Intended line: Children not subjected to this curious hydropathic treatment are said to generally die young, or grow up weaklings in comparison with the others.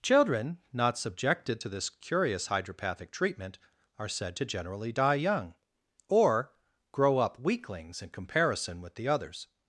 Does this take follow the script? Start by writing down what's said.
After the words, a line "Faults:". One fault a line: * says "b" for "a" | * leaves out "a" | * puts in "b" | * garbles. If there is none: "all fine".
Children not subjected to this curious hydropathic treatment are said to generally die young, or grow up weaklings in comparison with the others.
Faults:
all fine